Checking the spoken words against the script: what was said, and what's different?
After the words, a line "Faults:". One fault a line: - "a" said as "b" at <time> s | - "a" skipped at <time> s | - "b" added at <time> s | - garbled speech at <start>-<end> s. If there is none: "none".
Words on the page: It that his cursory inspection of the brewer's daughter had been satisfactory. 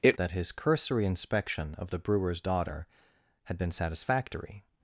It that his cursory inspection of the brewer's daughter had been satisfactory.
Faults:
none